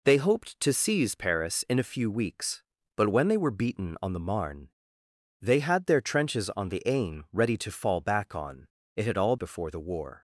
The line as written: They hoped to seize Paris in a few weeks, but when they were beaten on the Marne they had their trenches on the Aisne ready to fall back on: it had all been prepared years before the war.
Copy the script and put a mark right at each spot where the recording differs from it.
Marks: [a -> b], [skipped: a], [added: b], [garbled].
They hoped to seize Paris in a few weeks, but when they were beaten on the Marne they had their trenches on the Aisne ready to fall back on: it had all [skipped: been prepared years] before the war.